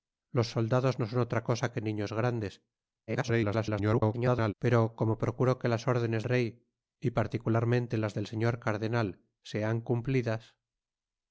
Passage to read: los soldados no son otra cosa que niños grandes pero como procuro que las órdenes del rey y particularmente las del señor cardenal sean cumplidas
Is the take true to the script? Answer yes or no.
no